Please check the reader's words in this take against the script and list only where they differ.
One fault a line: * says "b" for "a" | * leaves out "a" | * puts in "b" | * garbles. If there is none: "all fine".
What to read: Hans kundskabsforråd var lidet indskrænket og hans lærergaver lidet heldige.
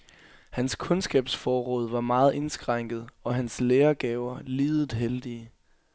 * says "meget" for "lidet"